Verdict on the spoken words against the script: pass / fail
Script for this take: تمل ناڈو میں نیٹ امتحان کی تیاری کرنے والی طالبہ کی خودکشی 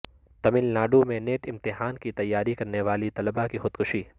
pass